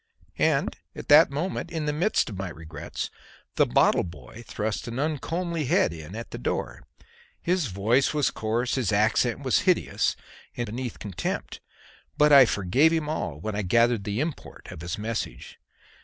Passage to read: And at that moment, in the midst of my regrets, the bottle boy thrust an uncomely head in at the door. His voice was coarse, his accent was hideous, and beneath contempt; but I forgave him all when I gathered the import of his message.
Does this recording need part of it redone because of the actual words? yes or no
no